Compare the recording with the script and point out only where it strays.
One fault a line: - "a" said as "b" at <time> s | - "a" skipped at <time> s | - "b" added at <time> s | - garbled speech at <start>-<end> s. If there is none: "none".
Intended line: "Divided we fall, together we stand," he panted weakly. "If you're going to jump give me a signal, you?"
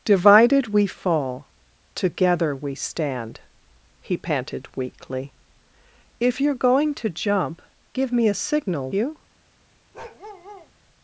none